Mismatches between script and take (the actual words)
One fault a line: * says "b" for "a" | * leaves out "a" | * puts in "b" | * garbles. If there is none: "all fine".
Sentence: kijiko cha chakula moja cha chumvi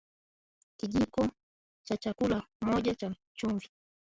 all fine